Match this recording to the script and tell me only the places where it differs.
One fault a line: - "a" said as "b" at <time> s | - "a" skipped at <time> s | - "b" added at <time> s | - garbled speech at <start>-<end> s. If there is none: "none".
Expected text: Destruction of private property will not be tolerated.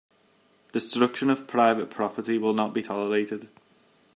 none